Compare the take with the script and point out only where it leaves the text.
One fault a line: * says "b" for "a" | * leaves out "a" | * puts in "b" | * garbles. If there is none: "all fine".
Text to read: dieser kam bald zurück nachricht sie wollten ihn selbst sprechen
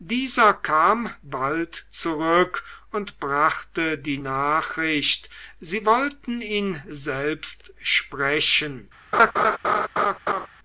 * puts in "und brachte die"